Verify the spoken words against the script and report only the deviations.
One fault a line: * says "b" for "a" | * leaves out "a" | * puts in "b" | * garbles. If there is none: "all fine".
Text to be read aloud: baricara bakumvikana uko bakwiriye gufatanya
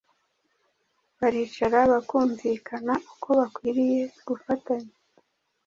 all fine